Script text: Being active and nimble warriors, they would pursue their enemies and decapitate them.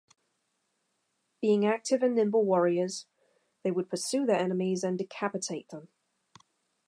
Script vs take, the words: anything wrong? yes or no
no